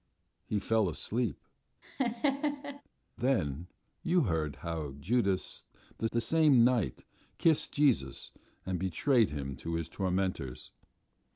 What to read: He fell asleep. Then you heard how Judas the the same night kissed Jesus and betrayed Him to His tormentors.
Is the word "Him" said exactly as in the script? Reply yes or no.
yes